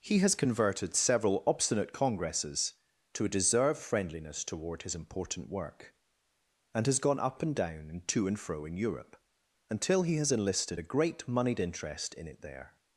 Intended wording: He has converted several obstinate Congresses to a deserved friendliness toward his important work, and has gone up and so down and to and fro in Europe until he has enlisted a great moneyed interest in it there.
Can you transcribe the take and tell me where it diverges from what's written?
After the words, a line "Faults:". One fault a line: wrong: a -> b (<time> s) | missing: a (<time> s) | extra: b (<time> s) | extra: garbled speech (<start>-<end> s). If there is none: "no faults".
He has converted several obstinate Congresses to a deserved friendliness toward his important work, and has gone up and down and to and fro in Europe until he has enlisted a great moneyed interest in it there.
Faults:
missing: so (7.5 s)